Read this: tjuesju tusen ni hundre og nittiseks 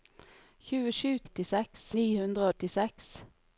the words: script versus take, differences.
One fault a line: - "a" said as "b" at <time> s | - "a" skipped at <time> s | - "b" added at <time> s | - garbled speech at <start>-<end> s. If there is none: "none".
- "tusen" said as "nittiseks" at 1.2 s
- "og" skipped at 2.5 s